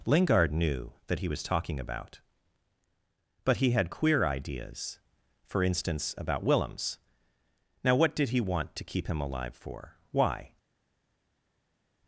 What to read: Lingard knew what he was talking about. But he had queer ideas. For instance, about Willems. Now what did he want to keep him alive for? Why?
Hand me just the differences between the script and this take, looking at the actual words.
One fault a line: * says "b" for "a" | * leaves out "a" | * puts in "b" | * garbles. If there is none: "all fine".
* says "that" for "what"